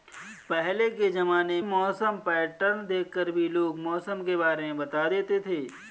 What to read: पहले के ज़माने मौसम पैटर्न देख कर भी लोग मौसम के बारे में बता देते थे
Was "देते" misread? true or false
false